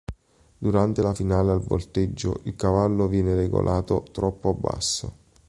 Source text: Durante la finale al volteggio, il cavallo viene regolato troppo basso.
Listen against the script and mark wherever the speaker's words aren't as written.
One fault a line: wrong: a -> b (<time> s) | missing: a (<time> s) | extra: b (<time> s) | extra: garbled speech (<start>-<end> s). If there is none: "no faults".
no faults